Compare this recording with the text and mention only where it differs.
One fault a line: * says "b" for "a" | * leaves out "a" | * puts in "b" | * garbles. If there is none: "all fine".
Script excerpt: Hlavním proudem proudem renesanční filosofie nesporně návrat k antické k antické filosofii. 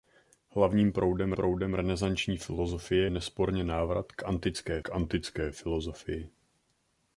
all fine